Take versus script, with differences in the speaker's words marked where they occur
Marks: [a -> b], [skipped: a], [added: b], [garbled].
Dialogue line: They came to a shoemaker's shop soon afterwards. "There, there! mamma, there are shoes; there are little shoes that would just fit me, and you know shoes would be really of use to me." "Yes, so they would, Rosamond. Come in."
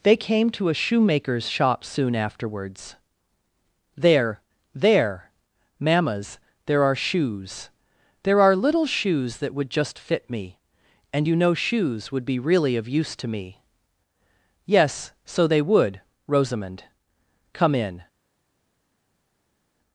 They came to a shoemaker's shop soon afterwards. "There, there! [mamma, -> mammas] there are shoes; there are little shoes that would just fit me, and you know shoes would be really of use to me." "Yes, so they would, Rosamond. Come in."